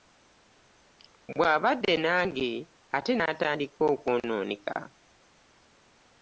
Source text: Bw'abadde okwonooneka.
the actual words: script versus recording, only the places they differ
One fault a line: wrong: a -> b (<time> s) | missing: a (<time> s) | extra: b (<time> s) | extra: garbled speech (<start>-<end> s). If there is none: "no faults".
extra: nange ate n'atandika (2.0 s)